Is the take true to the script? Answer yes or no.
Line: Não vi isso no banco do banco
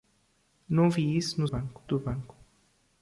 yes